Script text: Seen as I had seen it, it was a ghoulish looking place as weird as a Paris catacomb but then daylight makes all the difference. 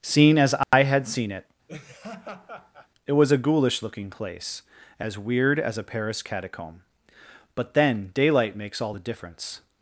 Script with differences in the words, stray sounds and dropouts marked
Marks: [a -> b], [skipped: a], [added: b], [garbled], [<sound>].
Seen as I [dropout] had seen it, [laugh] it was a ghoulish looking place as weird as a Paris catacomb but then daylight makes all the difference.